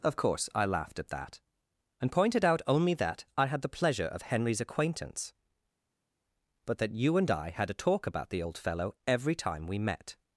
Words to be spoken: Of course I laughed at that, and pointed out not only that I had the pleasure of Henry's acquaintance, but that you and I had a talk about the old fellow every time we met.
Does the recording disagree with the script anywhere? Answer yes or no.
yes